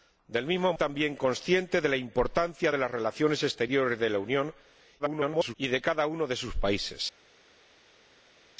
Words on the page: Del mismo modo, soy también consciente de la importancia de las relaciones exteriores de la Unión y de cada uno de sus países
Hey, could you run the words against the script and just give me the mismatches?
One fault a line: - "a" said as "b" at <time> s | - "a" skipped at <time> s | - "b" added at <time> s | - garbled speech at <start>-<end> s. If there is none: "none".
- "modo soy" skipped at 0.7 s
- garbled speech at 5.0-5.5 s